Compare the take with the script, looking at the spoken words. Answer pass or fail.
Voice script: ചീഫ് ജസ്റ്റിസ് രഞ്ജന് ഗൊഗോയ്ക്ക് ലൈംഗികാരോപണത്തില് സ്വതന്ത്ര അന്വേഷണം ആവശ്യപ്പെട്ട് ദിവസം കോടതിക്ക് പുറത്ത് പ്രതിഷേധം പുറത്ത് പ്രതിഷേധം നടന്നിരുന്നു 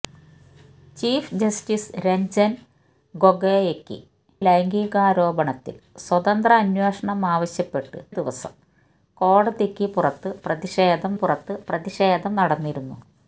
pass